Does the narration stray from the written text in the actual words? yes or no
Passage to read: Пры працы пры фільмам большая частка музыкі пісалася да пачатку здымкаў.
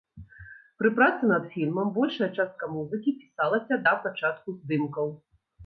yes